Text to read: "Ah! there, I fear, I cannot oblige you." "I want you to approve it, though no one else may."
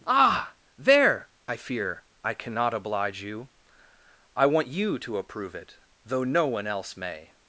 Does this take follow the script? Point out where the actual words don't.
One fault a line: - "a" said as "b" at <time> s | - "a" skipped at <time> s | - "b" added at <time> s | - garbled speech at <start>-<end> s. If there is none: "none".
none